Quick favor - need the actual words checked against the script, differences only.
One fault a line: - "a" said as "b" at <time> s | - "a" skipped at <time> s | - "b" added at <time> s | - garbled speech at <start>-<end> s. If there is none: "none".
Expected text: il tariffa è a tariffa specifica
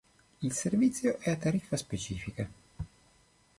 - "tariffa" said as "servizio" at 0.5 s